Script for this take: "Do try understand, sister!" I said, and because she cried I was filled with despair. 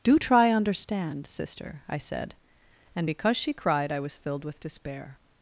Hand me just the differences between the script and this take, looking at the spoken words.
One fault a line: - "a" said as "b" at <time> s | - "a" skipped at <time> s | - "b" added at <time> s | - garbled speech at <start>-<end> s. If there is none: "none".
none